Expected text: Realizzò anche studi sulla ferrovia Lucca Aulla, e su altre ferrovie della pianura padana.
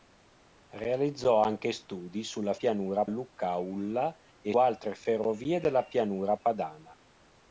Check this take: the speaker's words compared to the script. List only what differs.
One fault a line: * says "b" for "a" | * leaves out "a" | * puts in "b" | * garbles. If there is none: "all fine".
* says "pianura" for "ferrovia"
* leaves out "su"